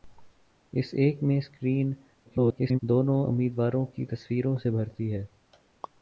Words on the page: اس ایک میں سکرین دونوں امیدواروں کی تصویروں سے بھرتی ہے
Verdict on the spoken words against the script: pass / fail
fail